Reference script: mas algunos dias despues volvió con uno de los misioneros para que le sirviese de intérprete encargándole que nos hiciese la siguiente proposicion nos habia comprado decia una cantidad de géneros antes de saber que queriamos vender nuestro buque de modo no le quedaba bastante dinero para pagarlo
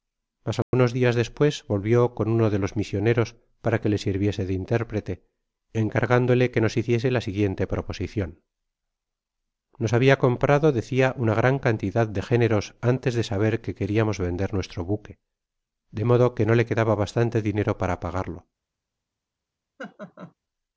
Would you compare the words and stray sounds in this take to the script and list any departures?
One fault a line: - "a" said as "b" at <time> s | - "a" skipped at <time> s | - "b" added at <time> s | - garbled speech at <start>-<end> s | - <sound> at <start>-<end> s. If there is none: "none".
- dropout at 0.6-0.7 s
- "gran" added at 11.3 s
- "que" added at 16.3 s
- laugh at 19.8-20.3 s